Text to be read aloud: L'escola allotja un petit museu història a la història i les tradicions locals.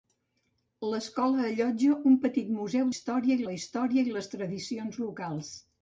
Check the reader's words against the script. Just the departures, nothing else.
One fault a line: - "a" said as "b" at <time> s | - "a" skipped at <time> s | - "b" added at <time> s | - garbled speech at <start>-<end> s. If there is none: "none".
none